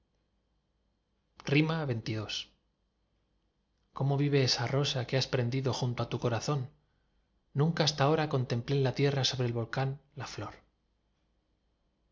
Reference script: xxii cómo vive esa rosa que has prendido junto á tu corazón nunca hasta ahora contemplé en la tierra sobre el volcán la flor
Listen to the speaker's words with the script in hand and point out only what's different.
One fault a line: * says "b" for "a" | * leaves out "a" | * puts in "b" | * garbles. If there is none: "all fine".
all fine